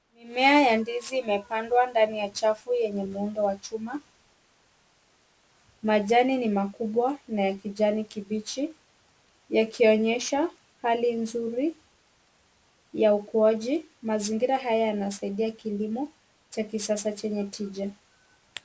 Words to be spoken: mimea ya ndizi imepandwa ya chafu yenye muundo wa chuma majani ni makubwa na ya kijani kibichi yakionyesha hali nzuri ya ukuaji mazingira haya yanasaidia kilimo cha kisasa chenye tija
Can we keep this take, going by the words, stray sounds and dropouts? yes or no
no